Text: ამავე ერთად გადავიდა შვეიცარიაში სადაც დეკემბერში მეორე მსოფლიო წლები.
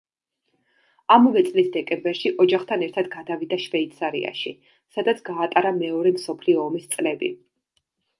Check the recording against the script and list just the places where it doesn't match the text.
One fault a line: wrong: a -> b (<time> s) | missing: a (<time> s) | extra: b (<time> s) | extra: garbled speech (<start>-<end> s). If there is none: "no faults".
extra: წლის დეკემბერში ოჯახთან (1.5 s)
wrong: დეკემბერში -> გაატარა (5.3 s)
extra: ომის (6.7 s)